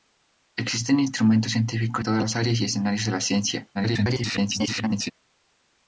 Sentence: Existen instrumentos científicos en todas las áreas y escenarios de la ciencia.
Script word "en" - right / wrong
wrong